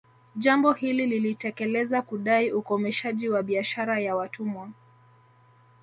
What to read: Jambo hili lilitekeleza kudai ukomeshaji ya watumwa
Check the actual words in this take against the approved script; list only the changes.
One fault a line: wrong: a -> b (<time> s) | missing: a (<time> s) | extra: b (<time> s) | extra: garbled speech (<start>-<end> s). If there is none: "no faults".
extra: wa biashara (3.3 s)